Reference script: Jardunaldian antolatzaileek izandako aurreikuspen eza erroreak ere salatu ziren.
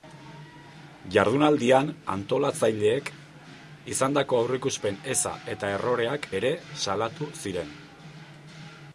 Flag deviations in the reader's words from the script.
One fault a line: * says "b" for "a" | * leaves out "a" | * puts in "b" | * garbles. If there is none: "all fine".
* puts in "eta"